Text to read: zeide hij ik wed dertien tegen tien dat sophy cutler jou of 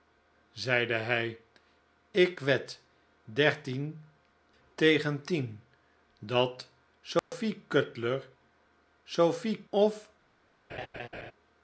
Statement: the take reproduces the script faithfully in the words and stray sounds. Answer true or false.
false